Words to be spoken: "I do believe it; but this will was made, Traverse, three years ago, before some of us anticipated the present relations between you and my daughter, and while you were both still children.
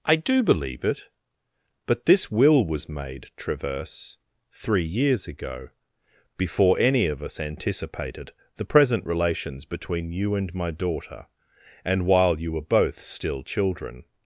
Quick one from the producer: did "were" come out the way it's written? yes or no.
yes